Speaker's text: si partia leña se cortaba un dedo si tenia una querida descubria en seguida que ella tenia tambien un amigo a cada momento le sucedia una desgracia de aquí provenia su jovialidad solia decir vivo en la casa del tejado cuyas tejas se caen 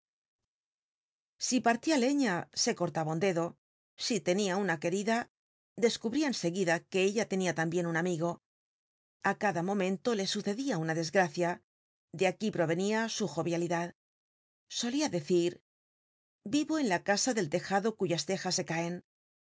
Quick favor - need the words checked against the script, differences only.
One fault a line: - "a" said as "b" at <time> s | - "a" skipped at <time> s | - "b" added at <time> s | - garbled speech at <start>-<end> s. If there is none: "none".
none